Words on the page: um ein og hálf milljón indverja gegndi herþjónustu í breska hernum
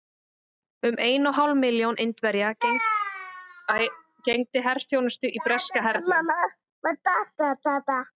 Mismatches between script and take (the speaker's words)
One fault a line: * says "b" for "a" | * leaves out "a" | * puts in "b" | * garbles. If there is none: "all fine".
all fine